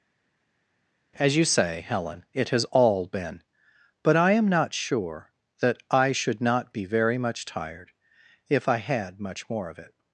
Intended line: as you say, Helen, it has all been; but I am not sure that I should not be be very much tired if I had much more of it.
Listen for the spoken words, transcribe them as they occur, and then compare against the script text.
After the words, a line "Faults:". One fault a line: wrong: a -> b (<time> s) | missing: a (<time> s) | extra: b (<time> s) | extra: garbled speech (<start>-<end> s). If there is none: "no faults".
as you say, Helen, it has all been; but I am not sure that I should not be very much tired if I had much more of it.
Faults:
missing: be (6.8 s)